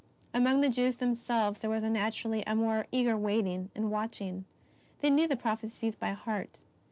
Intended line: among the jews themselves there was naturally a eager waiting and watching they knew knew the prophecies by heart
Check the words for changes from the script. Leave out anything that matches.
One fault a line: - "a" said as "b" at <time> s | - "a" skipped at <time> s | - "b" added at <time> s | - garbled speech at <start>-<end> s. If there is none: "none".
- "more" added at 2.5 s
- "knew" skipped at 5.3 s